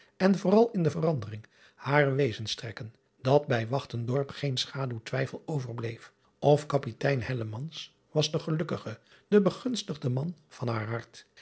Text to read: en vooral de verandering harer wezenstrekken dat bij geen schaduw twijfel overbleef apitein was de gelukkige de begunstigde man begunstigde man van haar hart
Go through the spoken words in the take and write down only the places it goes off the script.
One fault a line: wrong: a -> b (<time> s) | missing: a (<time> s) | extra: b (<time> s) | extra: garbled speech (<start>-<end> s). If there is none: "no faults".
extra: in (0.7 s)
extra: of (6.4 s)
missing: begunstigde man (10.4 s)